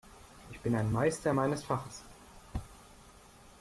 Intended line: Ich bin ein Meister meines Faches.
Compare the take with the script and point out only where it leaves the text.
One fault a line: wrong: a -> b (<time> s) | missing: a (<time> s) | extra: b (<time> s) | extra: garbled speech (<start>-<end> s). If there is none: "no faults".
no faults